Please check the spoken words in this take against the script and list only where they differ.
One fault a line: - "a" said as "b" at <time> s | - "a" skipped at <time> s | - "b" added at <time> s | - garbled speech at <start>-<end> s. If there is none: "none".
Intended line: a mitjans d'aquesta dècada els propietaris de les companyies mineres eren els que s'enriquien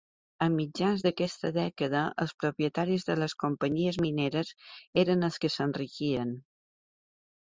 none